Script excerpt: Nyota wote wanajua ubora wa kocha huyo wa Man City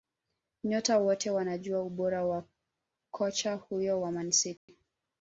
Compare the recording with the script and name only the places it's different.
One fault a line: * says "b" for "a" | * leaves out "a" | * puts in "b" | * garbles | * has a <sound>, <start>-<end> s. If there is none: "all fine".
* has a dropout, 4.6-4.7 s